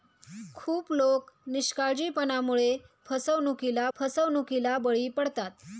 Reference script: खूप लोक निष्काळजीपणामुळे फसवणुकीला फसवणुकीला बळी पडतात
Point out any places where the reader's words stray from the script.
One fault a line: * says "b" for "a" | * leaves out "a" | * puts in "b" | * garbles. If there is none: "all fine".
all fine